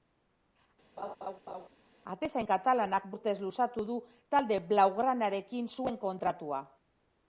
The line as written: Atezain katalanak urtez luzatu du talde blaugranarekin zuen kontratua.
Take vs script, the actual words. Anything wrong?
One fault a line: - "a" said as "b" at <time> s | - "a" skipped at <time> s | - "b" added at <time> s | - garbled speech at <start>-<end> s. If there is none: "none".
none